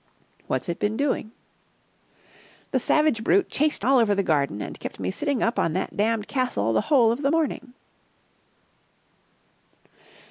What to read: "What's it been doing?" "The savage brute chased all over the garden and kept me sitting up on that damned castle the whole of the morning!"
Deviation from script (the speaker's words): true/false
false